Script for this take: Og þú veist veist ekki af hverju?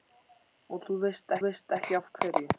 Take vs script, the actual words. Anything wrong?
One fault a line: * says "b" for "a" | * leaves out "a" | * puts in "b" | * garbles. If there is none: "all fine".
all fine